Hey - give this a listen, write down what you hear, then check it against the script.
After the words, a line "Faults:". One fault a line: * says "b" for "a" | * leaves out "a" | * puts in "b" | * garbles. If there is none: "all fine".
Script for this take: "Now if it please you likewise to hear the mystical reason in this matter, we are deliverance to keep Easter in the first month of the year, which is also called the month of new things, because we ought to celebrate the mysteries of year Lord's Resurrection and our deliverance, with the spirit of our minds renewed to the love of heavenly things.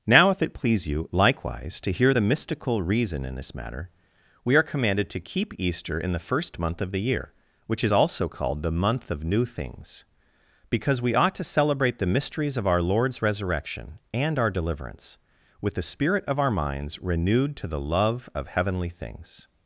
"Now if it please you likewise to hear the mystical reason in this matter, we are commanded to keep Easter in the first month of the year, which is also called the month of new things, because we ought to celebrate the mysteries of our Lord's Resurrection and our deliverance, with the spirit of our minds renewed to the love of heavenly things.
Faults:
* says "commanded" for "deliverance"
* says "our" for "year"